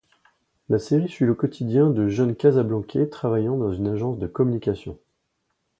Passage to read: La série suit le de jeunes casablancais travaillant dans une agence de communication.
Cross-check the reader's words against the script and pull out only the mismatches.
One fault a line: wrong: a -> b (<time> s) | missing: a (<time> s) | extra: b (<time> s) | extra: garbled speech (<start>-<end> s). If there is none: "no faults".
extra: quotidien (1.4 s)